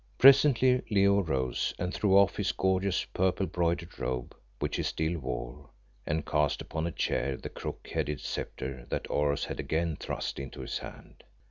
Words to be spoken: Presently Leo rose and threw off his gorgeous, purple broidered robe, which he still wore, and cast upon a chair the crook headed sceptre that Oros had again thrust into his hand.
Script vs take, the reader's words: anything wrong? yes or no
no